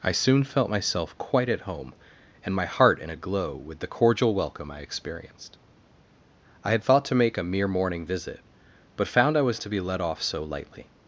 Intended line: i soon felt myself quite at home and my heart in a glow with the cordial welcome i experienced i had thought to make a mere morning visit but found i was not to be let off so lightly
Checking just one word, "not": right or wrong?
wrong